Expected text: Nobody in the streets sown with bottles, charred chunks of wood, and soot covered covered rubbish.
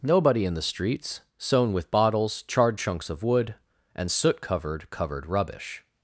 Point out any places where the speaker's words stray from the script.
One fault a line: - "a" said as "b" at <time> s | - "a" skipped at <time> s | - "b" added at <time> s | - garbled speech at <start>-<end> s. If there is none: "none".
none